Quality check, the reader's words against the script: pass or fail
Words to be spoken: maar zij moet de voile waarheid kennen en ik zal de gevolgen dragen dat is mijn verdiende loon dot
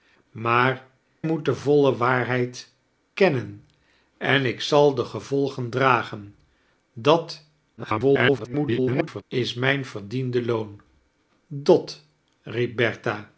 fail